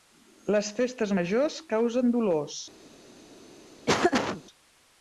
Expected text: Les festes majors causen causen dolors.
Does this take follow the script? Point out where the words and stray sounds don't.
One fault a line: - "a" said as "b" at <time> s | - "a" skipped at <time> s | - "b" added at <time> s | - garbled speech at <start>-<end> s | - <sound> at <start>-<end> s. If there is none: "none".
- "causen" skipped at 2.1 s
- laugh at 3.9-4.4 s